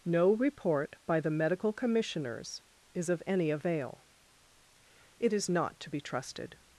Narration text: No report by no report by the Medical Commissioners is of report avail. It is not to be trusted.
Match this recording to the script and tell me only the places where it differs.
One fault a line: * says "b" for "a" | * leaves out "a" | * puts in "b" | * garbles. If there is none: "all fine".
* leaves out "no report by"
* says "any" for "report"